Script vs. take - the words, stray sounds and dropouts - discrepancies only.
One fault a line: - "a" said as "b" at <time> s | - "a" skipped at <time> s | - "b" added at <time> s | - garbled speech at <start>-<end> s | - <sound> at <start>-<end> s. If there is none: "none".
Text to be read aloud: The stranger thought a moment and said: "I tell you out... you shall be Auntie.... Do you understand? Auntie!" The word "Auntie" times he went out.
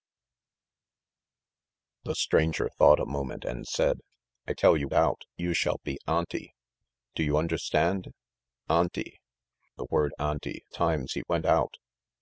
none